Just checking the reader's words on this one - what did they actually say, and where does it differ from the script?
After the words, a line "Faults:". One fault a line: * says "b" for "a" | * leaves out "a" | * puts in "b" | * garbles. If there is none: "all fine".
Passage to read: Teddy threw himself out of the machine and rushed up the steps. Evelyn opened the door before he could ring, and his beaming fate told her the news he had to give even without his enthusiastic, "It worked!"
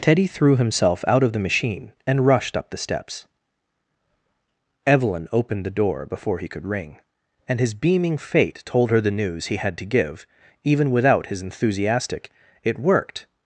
Teddy threw himself out of the machine and rushed up the steps. Evelyn opened the door before he could ring, and his beaming fate told her the news he had to give even without his enthusiastic, "It worked!"
Faults:
all fine